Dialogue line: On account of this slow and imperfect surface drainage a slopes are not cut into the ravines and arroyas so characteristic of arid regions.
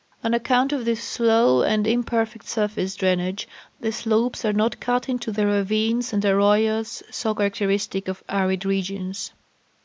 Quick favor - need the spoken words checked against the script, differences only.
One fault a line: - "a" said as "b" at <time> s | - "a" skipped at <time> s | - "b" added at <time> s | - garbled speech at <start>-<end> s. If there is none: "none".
- "a" said as "the" at 3.8 s